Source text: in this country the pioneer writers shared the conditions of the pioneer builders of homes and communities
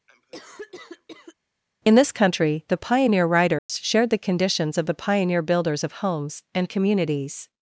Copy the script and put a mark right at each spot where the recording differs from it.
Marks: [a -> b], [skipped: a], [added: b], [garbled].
in this country the pioneer writers shared the conditions of the pioneer builders of homes and communities